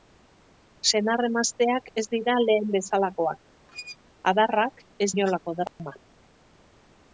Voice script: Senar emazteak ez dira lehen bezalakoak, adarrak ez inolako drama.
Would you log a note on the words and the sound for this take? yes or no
yes